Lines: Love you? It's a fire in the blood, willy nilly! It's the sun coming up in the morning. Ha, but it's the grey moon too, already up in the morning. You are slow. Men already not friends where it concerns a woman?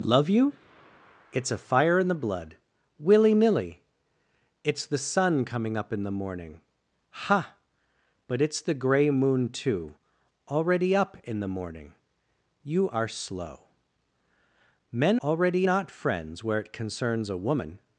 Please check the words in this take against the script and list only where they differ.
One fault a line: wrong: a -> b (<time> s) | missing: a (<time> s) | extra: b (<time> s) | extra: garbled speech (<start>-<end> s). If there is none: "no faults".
no faults